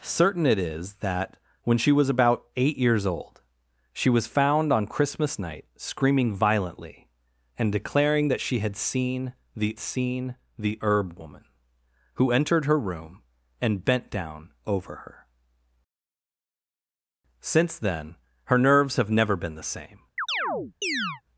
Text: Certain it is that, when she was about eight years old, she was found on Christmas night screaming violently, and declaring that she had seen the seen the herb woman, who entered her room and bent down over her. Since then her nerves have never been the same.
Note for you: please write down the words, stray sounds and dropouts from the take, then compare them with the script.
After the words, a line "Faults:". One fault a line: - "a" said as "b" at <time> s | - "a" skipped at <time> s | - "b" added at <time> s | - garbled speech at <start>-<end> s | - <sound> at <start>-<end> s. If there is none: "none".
Certain it is that, when she was about eight years old, she was found on Christmas night screaming violently, and declaring that she had seen the seen the herb woman, who entered her room and bent down over her. Since then her nerves have never been the same.
Faults:
- chirp at 20.2-21.2 s